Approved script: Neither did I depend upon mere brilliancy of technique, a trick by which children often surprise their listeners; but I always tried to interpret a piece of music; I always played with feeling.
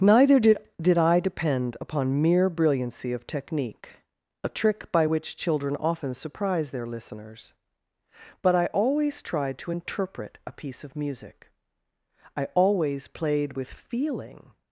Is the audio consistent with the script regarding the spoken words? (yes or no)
no